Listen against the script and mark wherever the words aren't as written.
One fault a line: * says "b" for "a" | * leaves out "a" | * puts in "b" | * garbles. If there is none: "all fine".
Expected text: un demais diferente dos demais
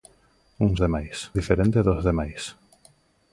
all fine